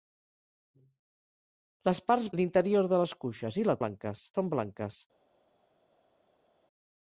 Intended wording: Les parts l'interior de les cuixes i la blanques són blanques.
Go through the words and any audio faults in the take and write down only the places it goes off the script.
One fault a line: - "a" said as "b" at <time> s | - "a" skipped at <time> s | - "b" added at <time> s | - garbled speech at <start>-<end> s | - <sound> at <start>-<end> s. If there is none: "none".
none